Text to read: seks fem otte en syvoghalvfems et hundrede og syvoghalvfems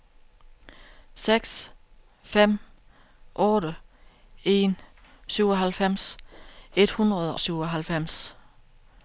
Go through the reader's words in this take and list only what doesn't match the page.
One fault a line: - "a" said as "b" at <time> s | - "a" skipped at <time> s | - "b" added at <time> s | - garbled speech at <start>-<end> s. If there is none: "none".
- "og" skipped at 7.4 s